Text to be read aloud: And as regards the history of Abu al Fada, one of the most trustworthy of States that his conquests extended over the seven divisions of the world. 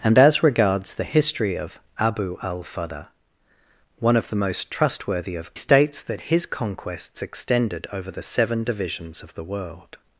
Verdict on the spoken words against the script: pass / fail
pass